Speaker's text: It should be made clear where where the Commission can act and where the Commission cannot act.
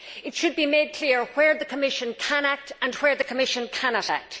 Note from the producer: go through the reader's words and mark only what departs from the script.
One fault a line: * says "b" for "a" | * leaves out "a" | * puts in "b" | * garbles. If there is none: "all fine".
* leaves out "where"